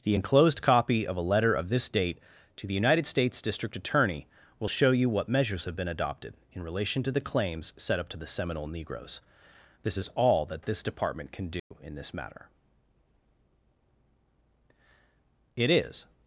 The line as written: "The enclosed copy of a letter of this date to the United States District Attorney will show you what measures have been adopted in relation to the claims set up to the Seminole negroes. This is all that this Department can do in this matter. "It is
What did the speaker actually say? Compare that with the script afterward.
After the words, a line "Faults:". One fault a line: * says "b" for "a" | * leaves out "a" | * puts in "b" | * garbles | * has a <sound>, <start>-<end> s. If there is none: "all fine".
"The enclosed copy of a letter of this date to the United States District Attorney will show you what measures have been adopted in relation to the claims set up to the Seminole negroes. This is all that this Department can do in this matter. "It is
Faults:
* has a dropout, 11.6-11.7 s